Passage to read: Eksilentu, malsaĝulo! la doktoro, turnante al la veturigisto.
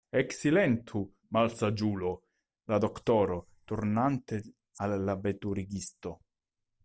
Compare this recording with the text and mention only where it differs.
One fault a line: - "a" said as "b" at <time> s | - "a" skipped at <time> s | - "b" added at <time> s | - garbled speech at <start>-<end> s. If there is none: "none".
none